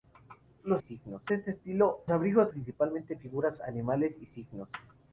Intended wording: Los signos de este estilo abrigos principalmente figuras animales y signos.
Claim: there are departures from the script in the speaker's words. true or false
false